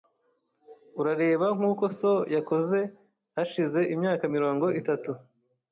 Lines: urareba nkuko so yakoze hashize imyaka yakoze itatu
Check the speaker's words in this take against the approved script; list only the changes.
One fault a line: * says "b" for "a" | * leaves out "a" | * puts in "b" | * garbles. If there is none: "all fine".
* says "mirongo" for "yakoze"